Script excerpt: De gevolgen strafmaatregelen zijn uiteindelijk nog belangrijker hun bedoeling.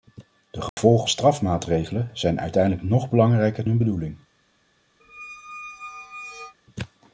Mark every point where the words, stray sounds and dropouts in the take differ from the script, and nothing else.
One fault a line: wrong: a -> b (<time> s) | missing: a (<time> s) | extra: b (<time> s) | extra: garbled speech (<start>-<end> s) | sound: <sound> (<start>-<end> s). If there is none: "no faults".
sound: dropout (0.7-0.8 s)
sound: squeak (5.0-6.5 s)